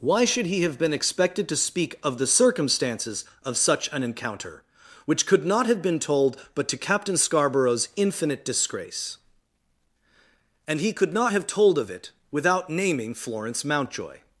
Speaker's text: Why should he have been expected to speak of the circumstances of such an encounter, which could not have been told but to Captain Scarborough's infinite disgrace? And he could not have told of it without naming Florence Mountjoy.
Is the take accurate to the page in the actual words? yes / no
yes